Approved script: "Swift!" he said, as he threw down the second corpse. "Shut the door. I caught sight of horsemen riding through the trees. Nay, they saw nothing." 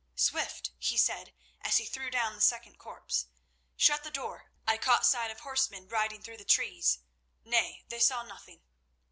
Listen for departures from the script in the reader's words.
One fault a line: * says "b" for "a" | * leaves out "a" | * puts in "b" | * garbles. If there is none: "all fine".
all fine